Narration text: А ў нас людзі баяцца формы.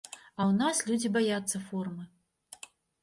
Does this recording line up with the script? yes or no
yes